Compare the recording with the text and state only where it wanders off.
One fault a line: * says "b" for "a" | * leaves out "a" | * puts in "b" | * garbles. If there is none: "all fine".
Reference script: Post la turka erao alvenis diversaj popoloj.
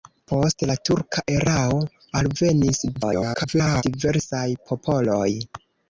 * garbles